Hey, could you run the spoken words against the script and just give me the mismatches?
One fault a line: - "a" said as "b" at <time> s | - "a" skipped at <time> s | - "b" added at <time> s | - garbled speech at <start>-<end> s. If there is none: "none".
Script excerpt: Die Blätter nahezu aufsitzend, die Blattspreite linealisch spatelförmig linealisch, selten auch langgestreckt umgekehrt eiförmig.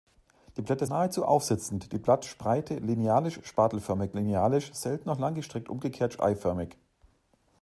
none